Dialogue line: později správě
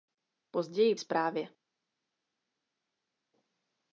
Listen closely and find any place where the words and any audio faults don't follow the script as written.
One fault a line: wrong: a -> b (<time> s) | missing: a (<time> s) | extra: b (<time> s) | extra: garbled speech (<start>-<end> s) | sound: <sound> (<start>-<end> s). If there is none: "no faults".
no faults